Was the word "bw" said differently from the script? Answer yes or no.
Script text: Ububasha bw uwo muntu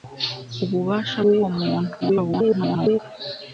yes